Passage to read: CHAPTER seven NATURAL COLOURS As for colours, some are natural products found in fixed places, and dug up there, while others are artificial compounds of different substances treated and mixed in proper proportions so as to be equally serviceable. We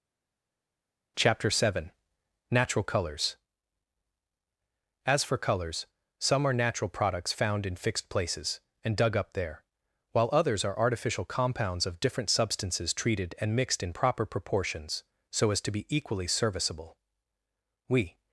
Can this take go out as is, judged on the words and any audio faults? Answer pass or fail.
pass